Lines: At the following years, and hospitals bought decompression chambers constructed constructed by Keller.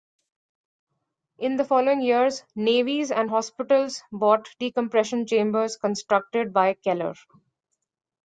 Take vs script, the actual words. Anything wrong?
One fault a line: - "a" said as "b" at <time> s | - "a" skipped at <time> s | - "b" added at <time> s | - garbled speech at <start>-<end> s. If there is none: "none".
- "At" said as "In" at 1.4 s
- "navies" added at 2.5 s
- "constructed" skipped at 6.5 s